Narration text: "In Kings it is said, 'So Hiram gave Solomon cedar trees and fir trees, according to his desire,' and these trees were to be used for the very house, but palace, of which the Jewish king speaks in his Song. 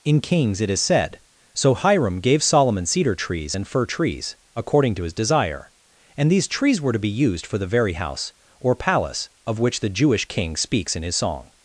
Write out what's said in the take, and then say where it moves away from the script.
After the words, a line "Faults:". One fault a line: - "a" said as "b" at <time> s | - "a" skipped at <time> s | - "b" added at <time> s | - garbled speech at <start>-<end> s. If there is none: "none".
"In Kings it is said, 'So Hiram gave Solomon cedar trees and fir trees, according to his desire,' and these trees were to be used for the very house, or palace, of which the Jewish king speaks in his Song.
Faults:
- "but" said as "or" at 8.6 s